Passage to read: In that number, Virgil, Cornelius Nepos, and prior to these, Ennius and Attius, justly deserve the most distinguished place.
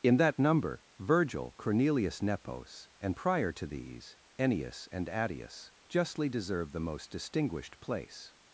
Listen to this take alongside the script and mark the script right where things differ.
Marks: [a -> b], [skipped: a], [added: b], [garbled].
In that number, Virgil, Cornelius Nepos, and prior to these, Ennius and Attius, justly deserve the most distinguished place.